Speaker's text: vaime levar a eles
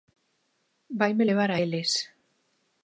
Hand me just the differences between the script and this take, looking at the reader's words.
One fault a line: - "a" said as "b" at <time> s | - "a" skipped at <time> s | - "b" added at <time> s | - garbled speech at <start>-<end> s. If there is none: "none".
none